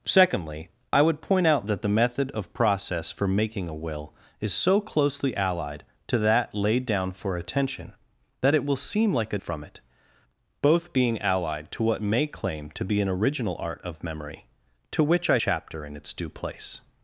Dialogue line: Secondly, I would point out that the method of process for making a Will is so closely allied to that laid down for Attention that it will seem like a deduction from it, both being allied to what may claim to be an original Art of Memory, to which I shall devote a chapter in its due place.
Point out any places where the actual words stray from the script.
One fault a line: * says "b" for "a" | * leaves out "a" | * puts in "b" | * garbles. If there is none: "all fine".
* leaves out "deduction"
* leaves out "shall devote a"